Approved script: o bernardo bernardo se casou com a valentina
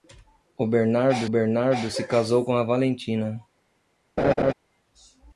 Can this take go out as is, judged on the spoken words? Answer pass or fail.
pass